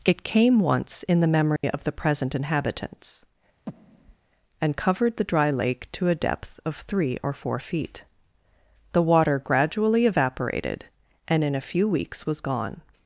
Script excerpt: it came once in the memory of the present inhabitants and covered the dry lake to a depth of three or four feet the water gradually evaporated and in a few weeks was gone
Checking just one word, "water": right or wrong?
right